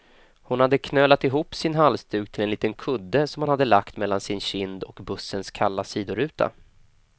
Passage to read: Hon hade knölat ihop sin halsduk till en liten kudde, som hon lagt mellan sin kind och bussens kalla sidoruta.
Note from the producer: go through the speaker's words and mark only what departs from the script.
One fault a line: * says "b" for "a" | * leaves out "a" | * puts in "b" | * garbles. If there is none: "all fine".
* puts in "hade"